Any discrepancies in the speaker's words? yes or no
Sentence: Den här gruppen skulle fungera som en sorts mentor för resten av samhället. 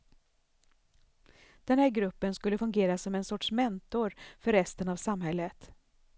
no